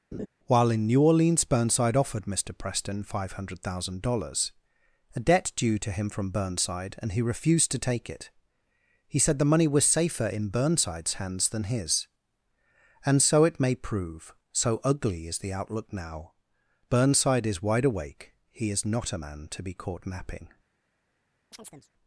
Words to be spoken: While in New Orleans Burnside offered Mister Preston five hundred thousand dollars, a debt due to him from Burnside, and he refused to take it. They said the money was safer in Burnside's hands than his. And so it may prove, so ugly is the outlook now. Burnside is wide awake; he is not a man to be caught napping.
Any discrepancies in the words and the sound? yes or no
yes